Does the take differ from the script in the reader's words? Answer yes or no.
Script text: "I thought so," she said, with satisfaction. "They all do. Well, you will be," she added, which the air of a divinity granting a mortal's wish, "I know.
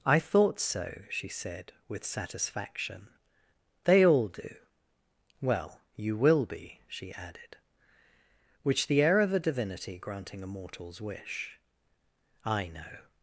no